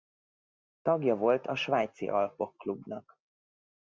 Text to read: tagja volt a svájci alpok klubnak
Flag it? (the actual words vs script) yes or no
no